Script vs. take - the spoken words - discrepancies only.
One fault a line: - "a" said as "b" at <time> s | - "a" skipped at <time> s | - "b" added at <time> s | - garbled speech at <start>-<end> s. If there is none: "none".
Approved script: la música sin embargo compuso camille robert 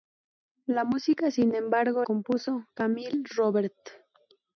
none